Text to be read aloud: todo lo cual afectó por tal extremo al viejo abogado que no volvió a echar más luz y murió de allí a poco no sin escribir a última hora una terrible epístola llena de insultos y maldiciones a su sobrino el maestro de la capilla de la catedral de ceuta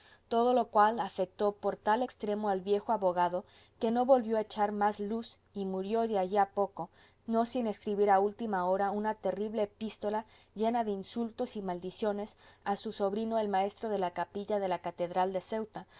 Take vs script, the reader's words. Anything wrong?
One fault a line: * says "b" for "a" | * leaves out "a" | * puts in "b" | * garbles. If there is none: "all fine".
all fine